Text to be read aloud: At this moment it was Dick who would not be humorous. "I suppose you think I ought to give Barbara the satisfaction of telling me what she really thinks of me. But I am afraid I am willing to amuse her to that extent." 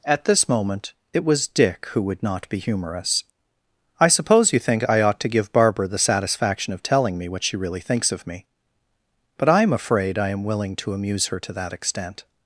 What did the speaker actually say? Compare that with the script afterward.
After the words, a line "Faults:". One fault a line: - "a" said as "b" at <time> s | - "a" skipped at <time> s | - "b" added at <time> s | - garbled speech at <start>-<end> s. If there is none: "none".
At this moment it was Dick who would not be humorous. "I suppose you think I ought to give Barbara the satisfaction of telling me what she really thinks of me. But I am afraid I am willing to amuse her to that extent."
Faults:
none